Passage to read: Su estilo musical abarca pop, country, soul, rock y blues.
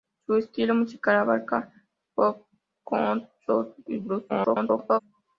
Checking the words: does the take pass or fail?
fail